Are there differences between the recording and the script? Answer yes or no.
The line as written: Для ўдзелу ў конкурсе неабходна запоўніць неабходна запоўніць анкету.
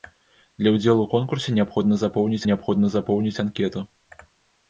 no